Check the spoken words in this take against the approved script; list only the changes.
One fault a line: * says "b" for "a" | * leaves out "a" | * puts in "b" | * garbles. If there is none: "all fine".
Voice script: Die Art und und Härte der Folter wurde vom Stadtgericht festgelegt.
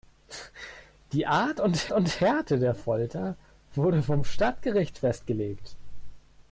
all fine